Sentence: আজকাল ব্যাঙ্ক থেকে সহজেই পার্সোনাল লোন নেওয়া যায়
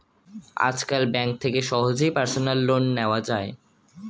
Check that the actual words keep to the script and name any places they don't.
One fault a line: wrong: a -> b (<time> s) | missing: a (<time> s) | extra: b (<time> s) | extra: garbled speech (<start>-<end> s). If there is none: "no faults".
no faults